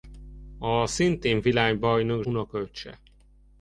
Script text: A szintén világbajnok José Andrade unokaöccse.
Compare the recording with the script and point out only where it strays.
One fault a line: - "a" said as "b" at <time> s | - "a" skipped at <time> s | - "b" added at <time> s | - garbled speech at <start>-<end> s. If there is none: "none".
- "José Andrade" skipped at 2.2 s